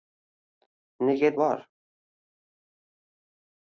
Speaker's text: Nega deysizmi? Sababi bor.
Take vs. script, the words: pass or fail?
fail